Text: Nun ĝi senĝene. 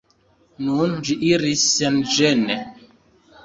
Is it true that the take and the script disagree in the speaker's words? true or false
true